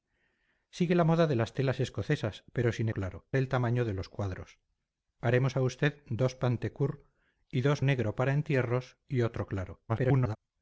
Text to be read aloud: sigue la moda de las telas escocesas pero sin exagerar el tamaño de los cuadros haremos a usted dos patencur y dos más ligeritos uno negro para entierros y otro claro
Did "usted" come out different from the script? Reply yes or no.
no